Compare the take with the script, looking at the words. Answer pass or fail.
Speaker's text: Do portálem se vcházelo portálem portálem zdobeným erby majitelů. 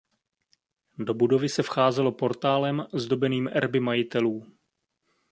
fail